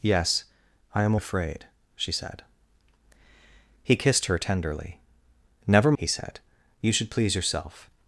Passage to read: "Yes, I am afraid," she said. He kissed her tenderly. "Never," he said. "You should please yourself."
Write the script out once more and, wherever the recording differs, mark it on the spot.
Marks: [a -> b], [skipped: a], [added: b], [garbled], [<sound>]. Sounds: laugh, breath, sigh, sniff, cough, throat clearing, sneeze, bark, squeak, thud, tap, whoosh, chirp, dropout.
"Yes, I am afraid," she said. He kissed her tenderly. "Never," he said. "You should please yourself."